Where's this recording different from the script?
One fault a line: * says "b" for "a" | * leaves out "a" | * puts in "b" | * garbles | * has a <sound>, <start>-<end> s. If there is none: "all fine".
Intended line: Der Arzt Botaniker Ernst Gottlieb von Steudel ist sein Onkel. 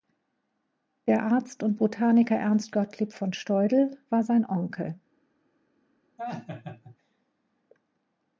* puts in "und"
* says "war" for "ist"
* has a laugh, 6.2-7.0 s